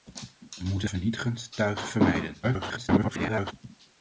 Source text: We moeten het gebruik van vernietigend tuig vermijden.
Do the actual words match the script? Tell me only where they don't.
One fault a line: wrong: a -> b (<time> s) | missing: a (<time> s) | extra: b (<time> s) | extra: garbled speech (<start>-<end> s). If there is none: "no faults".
missing: het gebruik van (0.9 s)
extra: garbled speech (2.4-3.5 s)